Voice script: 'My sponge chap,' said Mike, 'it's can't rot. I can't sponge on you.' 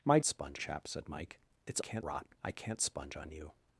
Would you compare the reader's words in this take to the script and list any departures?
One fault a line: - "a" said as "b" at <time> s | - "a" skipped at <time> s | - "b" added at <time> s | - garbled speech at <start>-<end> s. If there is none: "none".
none